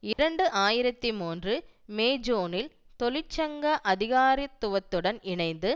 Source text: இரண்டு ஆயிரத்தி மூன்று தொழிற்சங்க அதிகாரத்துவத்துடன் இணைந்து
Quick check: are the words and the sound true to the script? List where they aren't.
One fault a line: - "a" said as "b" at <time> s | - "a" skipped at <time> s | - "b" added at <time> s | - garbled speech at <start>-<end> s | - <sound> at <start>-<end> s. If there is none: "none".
- dropout at 0.1-0.2 s
- "மே ஜூனில்" added at 1.9 s